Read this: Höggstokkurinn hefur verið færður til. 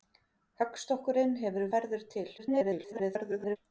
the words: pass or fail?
fail